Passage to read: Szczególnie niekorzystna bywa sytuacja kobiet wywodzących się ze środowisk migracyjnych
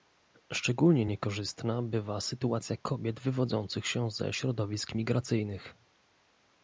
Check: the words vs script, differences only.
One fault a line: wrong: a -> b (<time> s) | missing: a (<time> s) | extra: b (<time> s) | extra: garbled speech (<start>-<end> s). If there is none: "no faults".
no faults